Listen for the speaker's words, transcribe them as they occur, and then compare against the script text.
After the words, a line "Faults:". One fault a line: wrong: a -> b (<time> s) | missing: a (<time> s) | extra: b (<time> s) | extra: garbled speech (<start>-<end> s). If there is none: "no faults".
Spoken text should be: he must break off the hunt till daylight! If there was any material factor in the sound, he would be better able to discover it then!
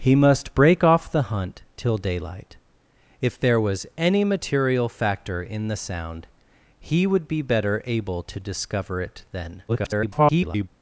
he must break off the hunt till daylight! If there was any material factor in the sound, he would be better able to discover it then! [garbled]
Faults:
extra: garbled speech (9.7-10.7 s)